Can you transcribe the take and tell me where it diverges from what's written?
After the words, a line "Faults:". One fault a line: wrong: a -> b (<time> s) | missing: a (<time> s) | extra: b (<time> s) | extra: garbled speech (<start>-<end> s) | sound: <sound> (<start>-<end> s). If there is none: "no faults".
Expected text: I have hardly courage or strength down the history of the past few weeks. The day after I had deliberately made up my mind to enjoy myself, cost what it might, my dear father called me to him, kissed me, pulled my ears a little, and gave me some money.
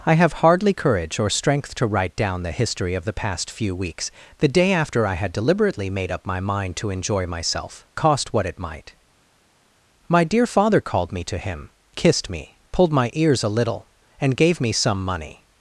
I have hardly courage or strength to write down the history of the past few weeks. The day after I had deliberately made up my mind to enjoy myself, cost what it might, my dear father called me to him, kissed me, pulled my ears a little, and gave me some money.
Faults:
extra: to write (1.8 s)